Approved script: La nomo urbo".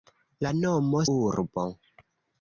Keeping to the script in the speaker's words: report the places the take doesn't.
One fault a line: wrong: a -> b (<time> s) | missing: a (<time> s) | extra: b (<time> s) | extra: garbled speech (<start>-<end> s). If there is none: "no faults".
no faults